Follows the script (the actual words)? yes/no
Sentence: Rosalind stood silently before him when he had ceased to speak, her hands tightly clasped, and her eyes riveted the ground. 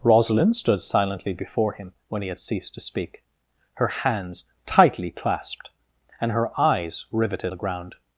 yes